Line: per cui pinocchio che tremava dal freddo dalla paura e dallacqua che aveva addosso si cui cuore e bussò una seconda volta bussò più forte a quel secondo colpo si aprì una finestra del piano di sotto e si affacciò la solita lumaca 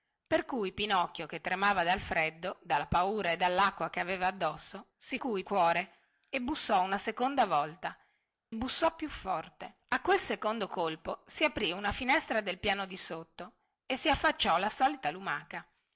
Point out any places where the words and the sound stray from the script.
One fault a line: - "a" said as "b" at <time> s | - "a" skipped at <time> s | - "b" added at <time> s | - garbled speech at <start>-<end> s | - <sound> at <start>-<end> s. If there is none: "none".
none